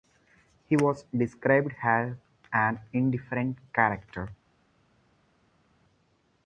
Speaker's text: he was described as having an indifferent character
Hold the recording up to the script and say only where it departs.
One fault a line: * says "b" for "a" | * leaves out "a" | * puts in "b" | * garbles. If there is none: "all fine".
* leaves out "having"